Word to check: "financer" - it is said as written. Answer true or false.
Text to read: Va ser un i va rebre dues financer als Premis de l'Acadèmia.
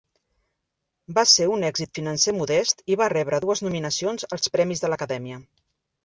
false